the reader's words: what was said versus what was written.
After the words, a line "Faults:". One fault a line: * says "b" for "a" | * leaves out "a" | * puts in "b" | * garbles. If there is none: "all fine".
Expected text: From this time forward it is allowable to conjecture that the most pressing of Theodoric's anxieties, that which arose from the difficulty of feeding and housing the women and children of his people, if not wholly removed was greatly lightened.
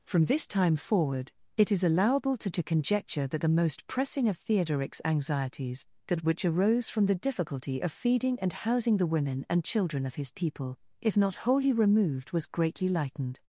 From this time forward it is allowable to to conjecture that the most pressing of Theodoric's anxieties, that which arose from the difficulty of feeding and housing the women and children of his people, if not wholly removed was greatly lightened.
Faults:
* puts in "to"